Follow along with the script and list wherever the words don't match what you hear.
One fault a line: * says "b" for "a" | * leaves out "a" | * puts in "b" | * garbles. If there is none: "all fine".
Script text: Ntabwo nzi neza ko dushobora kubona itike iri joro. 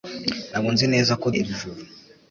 * leaves out "dushobora kubona itike"